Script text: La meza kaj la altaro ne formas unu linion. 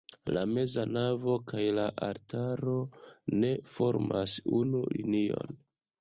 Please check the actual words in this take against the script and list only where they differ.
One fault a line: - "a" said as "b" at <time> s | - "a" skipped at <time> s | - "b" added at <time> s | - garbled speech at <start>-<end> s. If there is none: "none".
- "navo" added at 0.9 s